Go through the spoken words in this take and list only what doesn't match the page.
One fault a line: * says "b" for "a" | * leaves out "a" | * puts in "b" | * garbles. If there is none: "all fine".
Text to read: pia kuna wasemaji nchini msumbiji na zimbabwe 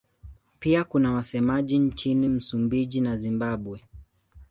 all fine